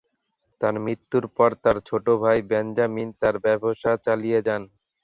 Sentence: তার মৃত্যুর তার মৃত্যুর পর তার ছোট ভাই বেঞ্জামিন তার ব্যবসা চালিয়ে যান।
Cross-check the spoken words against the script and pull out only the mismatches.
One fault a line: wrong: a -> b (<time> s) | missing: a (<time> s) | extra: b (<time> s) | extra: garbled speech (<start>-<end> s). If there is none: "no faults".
missing: তার মৃত্যুর (1.2 s)